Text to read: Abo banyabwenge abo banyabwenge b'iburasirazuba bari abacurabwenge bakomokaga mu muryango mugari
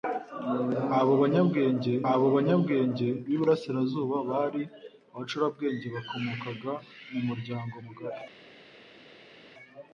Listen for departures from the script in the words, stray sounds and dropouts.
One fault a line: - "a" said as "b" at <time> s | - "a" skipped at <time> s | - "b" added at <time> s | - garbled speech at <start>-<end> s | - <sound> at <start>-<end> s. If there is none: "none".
none